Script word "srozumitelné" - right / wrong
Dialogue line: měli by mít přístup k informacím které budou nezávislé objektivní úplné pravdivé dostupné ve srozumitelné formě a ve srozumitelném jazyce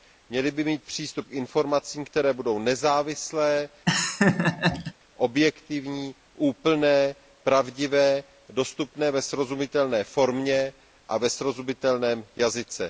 right